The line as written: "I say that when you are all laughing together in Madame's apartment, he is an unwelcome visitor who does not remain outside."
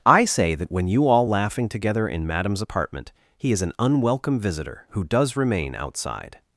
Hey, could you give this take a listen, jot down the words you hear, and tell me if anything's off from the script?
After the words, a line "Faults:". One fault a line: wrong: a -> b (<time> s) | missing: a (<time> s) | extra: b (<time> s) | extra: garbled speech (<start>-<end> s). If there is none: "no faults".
"I say that when you all laughing together in Madame's apartment, he is an unwelcome visitor who does remain outside."
Faults:
missing: are (1.1 s)
missing: not (5.4 s)